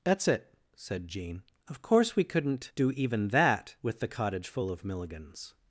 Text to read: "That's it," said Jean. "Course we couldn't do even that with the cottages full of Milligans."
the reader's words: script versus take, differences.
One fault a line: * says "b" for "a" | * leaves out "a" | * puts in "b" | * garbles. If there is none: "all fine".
* puts in "Of"
* says "cottage" for "cottages"